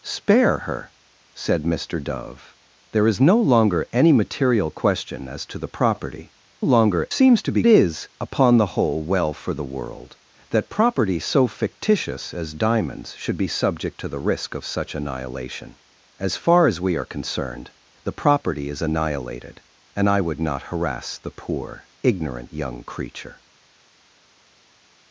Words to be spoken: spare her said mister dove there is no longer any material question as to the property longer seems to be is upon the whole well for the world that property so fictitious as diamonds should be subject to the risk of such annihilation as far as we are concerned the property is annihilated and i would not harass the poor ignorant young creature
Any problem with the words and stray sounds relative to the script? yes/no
no